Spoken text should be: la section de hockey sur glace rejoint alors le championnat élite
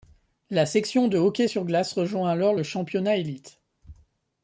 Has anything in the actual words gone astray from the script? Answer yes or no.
no